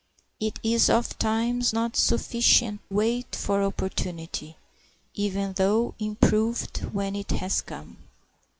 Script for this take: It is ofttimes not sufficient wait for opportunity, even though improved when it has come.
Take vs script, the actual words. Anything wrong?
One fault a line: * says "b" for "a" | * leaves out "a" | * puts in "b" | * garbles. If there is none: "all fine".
all fine